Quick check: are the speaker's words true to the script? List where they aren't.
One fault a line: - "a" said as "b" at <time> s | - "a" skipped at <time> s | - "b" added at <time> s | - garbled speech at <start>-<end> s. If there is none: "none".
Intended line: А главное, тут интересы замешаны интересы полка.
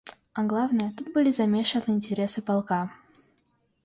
- "интересы" said as "были" at 1.1 s